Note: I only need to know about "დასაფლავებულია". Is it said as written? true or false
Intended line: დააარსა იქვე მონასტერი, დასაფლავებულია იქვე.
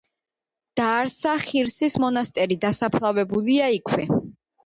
true